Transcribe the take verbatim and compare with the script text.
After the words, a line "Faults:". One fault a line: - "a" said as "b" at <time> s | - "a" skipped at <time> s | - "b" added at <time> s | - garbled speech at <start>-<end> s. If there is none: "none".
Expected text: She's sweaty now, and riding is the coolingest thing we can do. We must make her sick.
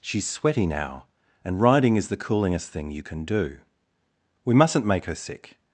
She's sweaty now, and riding is the coolingest thing you can do. We mustn't make her sick.
Faults:
- "we" said as "you" at 2.9 s
- "must" said as "mustn't" at 4.5 s